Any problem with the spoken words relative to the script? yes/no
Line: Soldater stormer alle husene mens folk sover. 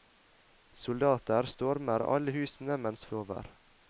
yes